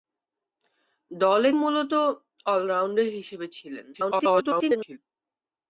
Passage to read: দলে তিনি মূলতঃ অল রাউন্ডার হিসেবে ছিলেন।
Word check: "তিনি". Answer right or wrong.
wrong